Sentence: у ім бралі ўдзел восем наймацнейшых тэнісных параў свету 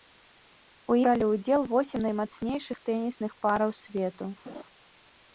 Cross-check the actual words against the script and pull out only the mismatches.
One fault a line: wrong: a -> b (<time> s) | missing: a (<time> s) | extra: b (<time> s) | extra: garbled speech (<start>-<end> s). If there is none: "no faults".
missing: ім (0.9 s)